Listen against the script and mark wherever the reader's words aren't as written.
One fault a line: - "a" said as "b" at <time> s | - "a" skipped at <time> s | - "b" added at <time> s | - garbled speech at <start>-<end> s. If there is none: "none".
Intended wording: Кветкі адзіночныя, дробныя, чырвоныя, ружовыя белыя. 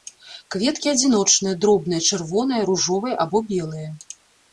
- "або" added at 3.3 s